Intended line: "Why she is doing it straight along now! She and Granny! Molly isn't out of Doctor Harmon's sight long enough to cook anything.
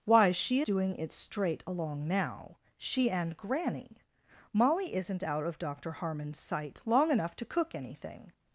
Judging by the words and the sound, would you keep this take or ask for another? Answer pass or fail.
fail